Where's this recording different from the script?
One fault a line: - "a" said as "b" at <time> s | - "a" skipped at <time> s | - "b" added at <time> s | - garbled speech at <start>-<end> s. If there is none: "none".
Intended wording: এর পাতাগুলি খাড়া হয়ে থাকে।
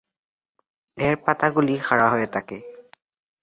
none